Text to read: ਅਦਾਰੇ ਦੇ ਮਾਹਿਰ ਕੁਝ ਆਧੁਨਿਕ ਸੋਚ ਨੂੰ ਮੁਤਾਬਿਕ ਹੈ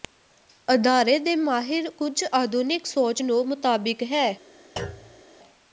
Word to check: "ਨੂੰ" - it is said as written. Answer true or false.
true